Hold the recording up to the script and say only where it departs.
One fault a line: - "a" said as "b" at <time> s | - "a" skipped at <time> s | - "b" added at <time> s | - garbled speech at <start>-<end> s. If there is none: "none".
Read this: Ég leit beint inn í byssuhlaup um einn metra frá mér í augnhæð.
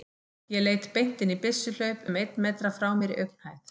none